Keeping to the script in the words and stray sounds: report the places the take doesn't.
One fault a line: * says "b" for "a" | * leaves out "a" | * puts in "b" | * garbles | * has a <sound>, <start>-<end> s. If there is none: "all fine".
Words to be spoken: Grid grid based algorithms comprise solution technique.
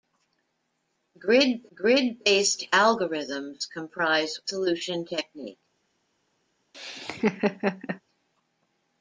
* has a laugh, 6.7-8.0 s